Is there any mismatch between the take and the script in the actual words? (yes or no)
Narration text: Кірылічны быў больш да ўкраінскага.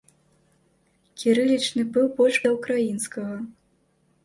no